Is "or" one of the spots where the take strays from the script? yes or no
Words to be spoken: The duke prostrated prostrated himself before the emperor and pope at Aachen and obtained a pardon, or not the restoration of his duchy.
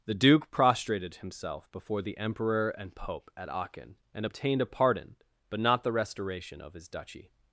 yes